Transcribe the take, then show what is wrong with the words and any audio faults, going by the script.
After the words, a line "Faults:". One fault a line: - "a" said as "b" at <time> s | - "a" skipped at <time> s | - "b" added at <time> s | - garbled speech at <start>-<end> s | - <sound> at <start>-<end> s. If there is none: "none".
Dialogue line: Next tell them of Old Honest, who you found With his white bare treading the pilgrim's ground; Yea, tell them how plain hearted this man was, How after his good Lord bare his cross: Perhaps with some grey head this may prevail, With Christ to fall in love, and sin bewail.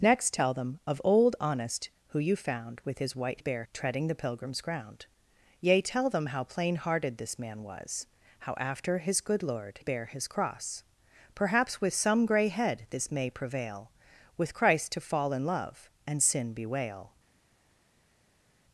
Next tell them of Old Honest, who you found With his white bare treading the pilgrim's ground; Yea, tell them how plain hearted this man was, How after his good Lord bare his cross: Perhaps with some grey head this may prevail, With Christ to fall in love, and sin bewail.
Faults:
none